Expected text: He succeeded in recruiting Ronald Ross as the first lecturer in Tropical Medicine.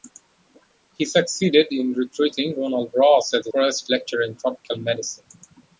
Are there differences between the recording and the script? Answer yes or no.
no